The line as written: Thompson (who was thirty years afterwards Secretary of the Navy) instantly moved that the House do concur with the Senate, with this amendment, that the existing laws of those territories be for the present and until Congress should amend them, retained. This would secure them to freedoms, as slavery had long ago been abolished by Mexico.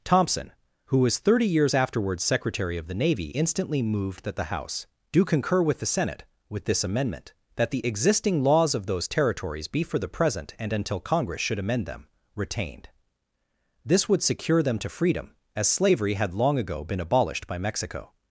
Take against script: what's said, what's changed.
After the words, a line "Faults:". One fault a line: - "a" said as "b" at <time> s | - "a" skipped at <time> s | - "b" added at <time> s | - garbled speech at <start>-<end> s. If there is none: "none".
Thompson (who was thirty years afterwards Secretary of the Navy) instantly moved that the House do concur with the Senate, with this amendment, that the existing laws of those territories be for the present and until Congress should amend them, retained. This would secure them to freedom, as slavery had long ago been abolished by Mexico.
Faults:
- "freedoms" said as "freedom" at 14.9 s